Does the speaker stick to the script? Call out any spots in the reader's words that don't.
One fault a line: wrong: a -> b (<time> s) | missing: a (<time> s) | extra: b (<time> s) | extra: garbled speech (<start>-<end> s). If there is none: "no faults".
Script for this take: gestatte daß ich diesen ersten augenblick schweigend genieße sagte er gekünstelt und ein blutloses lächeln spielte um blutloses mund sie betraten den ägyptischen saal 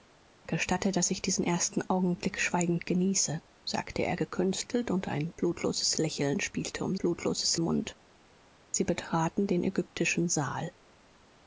no faults